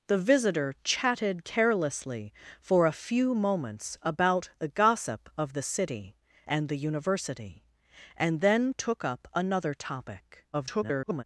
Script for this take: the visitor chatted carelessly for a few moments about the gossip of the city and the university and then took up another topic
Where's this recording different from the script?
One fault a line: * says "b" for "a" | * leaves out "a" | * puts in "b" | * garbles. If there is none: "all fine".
* garbles